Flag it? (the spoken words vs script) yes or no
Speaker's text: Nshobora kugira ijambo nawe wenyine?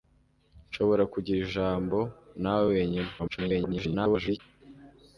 yes